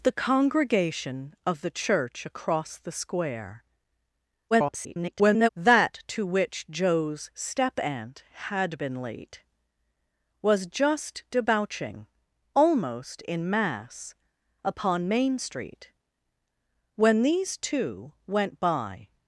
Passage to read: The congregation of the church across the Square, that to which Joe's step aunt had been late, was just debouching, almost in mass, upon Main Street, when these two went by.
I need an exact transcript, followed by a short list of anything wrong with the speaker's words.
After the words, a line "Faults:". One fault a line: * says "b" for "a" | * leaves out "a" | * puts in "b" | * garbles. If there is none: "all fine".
The congregation of the church across the Square, [garbled] that to which Joe's step aunt had been late, was just debouching, almost in mass, upon Main Street, when these two went by.
Faults:
* garbles